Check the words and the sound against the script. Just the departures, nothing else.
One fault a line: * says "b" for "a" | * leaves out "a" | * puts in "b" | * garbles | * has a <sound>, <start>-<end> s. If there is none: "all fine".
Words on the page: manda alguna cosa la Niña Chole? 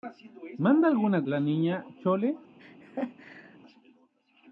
* leaves out "cosa"
* has a laugh, 2.6-3.6 s